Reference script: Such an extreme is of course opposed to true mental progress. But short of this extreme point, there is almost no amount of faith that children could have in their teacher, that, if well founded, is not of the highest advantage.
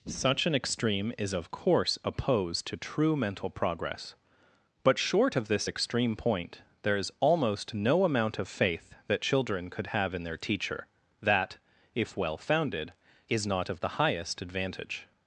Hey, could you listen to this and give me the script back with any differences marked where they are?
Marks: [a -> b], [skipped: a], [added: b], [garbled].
Such an extreme is of course opposed to true mental progress. But short of this extreme point, there is almost no amount of faith that children could have in their teacher, that, if well founded, is not of the highest advantage.